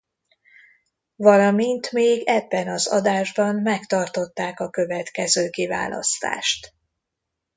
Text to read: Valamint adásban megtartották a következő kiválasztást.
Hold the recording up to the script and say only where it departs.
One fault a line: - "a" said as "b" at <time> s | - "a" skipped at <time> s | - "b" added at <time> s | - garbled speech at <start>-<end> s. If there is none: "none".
- "még ebben az" added at 1.9 s